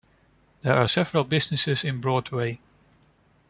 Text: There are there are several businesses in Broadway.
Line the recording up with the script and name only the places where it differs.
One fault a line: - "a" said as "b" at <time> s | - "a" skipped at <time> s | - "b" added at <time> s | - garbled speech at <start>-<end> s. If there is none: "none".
- "there are" skipped at 0.9 s